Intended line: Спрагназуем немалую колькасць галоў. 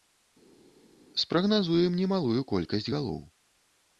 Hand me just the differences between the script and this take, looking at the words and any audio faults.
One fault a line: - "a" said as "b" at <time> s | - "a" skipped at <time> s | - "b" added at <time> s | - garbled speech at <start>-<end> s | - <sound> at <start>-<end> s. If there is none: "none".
none